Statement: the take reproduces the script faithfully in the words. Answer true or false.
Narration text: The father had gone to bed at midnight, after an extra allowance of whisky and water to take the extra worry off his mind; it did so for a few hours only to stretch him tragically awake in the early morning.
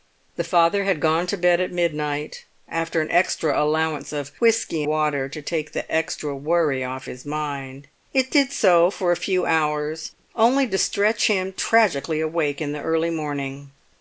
false